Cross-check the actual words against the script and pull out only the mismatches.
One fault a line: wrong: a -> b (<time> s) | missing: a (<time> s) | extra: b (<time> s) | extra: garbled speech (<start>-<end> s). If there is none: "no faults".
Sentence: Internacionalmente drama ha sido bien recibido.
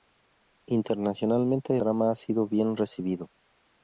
no faults